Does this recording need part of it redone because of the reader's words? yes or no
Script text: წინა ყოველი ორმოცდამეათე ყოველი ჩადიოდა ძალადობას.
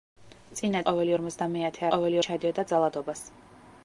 no